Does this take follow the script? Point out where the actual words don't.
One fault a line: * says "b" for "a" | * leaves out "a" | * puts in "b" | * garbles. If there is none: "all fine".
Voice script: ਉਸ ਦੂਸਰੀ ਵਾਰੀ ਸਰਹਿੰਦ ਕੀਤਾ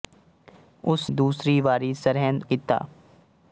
all fine